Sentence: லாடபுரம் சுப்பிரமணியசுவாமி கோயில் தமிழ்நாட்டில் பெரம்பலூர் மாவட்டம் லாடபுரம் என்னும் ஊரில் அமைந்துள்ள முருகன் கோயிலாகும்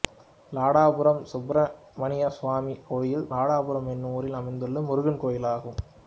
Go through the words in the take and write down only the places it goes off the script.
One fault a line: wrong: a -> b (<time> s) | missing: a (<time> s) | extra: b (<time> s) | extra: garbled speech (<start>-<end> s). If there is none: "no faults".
missing: தமிழ்நாட்டில் பெரம்பலூர் மாவட்டம் (3.3 s)